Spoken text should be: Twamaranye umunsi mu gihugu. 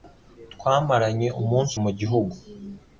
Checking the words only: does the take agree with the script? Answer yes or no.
yes